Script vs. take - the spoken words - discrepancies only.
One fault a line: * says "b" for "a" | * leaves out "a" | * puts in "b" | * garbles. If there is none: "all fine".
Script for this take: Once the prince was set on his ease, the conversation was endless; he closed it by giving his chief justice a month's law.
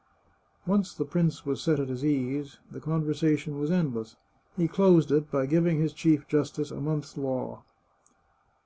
* says "at" for "on"